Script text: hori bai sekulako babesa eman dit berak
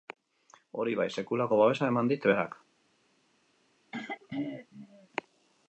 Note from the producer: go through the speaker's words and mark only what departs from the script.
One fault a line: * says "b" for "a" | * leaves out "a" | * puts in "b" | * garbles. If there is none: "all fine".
all fine